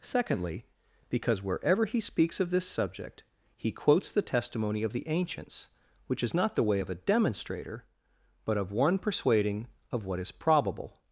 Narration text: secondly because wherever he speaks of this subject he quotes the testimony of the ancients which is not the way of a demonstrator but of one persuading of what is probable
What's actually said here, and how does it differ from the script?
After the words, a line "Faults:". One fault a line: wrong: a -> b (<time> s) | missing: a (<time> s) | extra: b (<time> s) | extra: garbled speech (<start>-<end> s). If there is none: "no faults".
secondly because wherever he speaks of this subject he quotes the testimony of the ancients which is not the way of a demonstrator but of one persuading of what is probable
Faults:
no faults